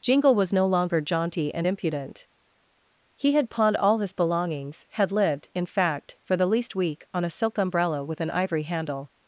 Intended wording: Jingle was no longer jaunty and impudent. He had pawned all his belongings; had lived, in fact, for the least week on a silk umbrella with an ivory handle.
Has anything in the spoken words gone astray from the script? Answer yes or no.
no